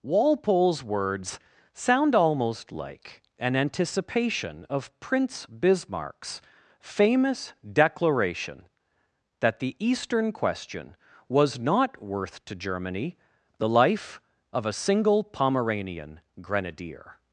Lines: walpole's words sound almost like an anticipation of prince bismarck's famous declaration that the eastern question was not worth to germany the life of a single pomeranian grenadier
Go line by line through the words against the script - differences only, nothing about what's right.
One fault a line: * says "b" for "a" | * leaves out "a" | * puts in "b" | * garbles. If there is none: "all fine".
all fine